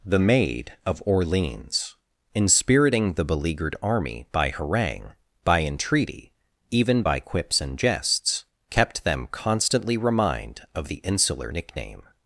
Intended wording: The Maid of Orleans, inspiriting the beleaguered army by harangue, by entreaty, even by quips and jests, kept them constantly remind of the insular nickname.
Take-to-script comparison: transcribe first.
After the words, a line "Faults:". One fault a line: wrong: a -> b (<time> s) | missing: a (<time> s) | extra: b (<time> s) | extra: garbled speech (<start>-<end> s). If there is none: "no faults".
The Maid of Orleans, inspiriting the beleaguered army by harangue, by entreaty, even by quips and jests, kept them constantly remind of the insular nickname.
Faults:
no faults